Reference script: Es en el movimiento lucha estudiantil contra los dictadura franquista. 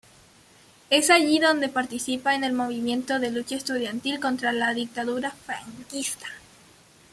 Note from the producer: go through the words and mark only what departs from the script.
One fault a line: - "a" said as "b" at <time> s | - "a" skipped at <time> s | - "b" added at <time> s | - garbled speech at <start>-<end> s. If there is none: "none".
- "allí donde participa" added at 1.1 s
- "de" added at 3.2 s
- "los" said as "la" at 4.5 s